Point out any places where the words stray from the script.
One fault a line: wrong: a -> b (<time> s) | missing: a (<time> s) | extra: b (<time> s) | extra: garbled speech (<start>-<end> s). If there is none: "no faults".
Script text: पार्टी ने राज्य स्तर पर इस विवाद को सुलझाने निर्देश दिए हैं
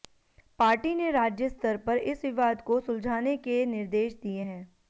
extra: के (3.4 s)